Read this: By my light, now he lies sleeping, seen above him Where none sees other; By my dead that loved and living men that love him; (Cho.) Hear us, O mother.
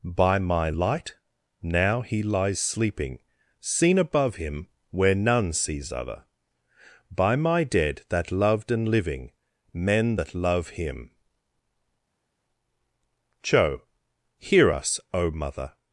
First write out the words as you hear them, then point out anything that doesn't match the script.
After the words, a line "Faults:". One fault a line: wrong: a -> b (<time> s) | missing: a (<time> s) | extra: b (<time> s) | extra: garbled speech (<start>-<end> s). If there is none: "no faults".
By my light, now he lies sleeping, seen above him Where none sees other; By my dead that loved and living men that love him; (Cho.) Hear us, O mother.
Faults:
no faults